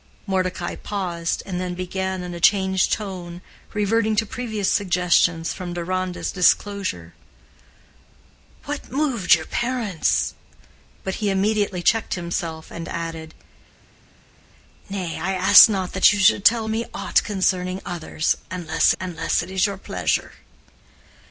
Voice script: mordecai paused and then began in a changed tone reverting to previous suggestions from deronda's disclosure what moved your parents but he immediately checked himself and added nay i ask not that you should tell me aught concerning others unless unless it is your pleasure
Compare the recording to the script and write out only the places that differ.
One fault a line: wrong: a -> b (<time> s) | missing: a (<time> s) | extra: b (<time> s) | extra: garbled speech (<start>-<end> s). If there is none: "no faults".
no faults